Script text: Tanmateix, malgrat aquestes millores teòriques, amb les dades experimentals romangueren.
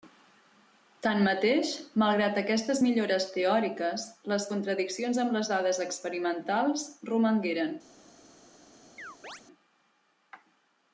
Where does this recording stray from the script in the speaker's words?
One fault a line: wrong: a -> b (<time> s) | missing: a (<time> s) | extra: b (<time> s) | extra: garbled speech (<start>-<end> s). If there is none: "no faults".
extra: les contradiccions (4.3 s)